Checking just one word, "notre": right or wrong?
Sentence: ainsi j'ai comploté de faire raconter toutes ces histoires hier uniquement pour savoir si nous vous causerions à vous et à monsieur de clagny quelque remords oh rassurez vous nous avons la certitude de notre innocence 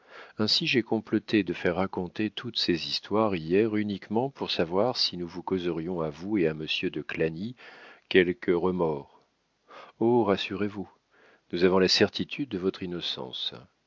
wrong